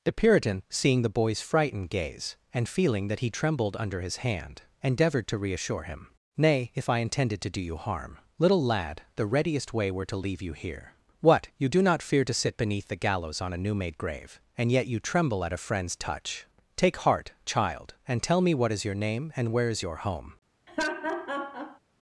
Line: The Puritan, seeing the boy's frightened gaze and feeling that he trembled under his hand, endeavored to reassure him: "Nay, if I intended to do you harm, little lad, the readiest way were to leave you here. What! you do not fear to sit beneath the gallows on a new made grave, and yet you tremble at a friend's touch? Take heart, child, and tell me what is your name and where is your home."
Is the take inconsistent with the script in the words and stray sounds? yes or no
yes